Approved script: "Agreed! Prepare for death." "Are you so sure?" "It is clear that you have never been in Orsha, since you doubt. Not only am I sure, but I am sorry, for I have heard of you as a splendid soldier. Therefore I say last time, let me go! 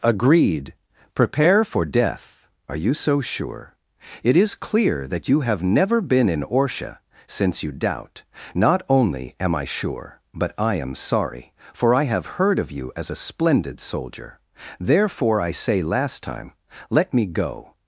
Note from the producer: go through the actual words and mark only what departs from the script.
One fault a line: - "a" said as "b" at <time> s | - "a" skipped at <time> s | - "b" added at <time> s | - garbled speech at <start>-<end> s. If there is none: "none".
none